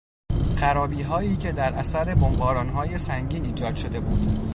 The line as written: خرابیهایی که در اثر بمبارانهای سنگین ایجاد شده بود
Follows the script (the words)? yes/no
yes